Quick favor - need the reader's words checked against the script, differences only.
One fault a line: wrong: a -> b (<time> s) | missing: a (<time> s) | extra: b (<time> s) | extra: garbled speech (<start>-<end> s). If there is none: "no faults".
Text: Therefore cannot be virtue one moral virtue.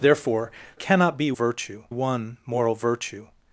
no faults